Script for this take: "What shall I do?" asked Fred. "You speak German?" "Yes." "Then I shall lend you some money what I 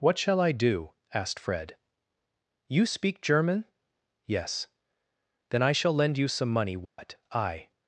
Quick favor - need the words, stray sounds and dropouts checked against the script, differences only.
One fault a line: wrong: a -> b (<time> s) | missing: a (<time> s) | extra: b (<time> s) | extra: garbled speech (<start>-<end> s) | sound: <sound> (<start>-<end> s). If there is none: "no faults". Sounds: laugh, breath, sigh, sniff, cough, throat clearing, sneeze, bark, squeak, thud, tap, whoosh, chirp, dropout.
sound: dropout (6.8-7.0 s)